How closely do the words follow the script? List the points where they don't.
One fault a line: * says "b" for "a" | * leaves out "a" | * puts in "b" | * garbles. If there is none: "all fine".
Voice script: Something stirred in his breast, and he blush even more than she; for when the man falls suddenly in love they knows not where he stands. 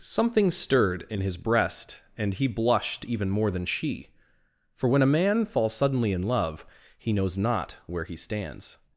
* says "blushed" for "blush"
* says "a" for "the"
* says "he" for "they"